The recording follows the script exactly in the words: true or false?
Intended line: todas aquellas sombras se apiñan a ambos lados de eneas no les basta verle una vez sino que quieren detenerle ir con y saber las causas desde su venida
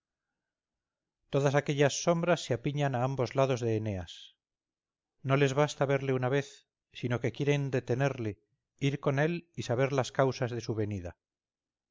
false